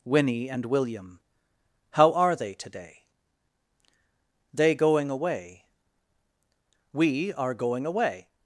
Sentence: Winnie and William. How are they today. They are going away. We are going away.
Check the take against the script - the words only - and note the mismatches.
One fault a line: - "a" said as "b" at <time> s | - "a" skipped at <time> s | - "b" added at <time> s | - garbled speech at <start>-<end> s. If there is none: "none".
- "are" skipped at 4.7 s